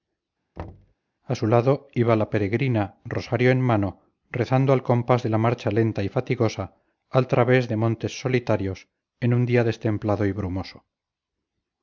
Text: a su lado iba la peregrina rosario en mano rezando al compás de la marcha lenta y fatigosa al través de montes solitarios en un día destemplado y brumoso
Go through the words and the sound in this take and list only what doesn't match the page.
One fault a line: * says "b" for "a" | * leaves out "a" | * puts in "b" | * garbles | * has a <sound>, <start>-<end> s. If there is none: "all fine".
* has a thud, 0.6-0.9 s